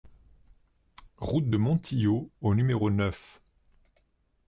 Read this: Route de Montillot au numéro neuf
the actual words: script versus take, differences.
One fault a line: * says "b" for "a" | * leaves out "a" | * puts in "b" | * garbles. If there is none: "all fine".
all fine